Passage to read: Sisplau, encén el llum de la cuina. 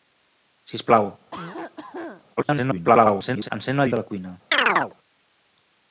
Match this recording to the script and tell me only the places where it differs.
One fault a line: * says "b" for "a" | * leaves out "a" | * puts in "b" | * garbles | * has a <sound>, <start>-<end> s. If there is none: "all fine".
* has a cough, 1.3-2.2 s
* garbles
* leaves out "llum"
* has a chirp, 4.5-4.9 s